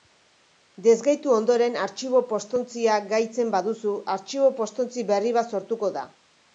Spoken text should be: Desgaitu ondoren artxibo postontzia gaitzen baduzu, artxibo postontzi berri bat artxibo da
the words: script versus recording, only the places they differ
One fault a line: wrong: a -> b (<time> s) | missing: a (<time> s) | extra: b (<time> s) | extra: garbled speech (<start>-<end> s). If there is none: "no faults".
wrong: artxibo -> sortuko (5.6 s)